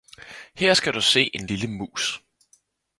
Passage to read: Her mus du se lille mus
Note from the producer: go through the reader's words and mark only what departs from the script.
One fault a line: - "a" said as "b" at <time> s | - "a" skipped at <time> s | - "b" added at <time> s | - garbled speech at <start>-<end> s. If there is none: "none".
- "mus" said as "skal" at 0.7 s
- "en" added at 1.3 s